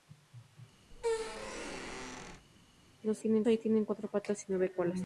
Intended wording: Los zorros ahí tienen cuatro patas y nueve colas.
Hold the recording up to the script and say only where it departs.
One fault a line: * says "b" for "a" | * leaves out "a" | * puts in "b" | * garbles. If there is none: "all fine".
* says "tienen" for "zorros"